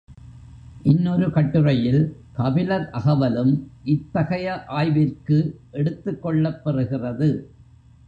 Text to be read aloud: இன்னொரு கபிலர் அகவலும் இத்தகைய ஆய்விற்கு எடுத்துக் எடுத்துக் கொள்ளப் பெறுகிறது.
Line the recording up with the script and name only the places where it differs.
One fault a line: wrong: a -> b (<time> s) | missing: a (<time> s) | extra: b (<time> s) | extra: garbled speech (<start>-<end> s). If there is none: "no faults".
extra: கட்டுரையில் (1.3 s)
missing: எடுத்துக் (6.2 s)